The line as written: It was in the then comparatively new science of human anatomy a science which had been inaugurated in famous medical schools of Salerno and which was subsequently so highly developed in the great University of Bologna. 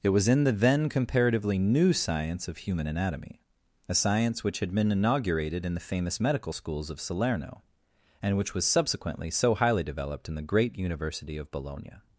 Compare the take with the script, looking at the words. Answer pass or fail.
fail